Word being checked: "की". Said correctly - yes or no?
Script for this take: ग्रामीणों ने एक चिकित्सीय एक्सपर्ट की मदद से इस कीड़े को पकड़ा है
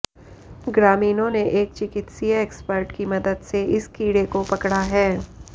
yes